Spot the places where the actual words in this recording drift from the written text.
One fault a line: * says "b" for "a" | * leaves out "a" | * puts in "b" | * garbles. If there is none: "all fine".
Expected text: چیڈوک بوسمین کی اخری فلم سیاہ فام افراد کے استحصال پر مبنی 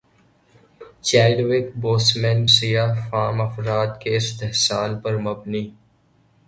* leaves out "کی اخری فلم"